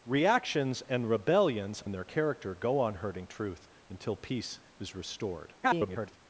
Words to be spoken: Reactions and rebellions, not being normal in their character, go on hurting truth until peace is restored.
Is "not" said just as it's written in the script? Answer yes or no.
no